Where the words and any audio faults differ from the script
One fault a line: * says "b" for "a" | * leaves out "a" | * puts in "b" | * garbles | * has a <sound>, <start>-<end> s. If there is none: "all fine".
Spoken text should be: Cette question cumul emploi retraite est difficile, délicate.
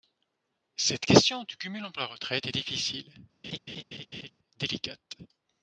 * puts in "du"
* has a laugh, 3.4-4.3 s